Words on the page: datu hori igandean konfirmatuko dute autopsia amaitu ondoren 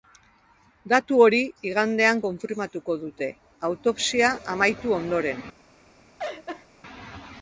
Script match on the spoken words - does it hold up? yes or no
yes